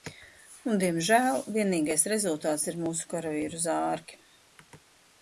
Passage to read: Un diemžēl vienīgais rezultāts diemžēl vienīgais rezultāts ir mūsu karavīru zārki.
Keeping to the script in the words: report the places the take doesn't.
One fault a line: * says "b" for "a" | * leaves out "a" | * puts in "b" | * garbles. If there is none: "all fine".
* leaves out "diemžēl vienīgais rezultāts"